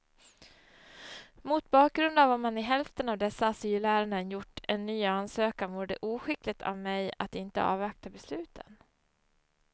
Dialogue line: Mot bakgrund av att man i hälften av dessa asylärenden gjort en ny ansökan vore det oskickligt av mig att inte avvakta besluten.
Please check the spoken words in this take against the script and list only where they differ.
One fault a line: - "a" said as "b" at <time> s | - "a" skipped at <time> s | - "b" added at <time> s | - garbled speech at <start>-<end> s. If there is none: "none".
none